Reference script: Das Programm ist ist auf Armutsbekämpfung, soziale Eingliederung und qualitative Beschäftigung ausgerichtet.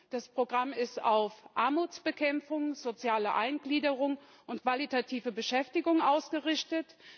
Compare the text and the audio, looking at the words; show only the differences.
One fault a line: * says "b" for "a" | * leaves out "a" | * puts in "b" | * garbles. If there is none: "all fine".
* leaves out "ist"